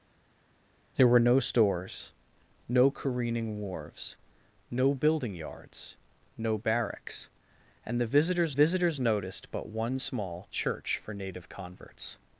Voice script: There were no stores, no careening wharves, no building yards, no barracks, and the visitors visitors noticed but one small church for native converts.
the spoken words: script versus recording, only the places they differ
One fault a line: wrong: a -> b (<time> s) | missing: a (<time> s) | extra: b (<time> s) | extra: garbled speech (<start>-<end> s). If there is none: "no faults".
no faults